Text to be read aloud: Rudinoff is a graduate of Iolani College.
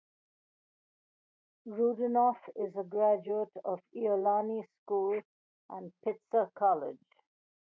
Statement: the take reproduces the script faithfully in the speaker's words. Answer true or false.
false